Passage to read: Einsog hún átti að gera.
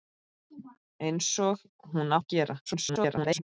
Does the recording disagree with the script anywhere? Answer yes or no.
yes